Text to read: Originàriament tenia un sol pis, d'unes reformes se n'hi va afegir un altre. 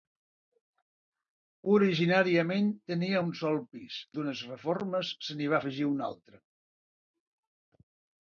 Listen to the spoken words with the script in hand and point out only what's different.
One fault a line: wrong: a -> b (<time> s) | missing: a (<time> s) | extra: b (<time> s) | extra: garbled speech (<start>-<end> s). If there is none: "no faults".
no faults